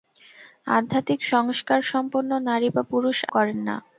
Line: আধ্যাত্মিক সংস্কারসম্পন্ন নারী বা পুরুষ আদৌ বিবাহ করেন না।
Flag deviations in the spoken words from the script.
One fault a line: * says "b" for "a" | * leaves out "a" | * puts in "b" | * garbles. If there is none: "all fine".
* leaves out "আদৌ বিবাহ"